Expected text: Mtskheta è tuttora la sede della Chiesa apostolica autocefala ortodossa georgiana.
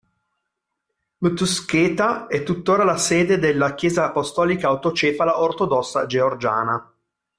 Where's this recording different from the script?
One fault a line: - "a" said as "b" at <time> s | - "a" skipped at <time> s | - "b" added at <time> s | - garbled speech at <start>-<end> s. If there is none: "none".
none